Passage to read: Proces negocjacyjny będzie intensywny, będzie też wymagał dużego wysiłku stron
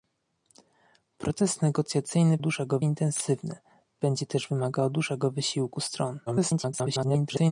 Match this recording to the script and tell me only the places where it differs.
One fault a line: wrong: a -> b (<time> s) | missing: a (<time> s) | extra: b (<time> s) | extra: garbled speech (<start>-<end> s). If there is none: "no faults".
wrong: będzie -> dużego (2.4 s)
extra: garbled speech (6.3-7.5 s)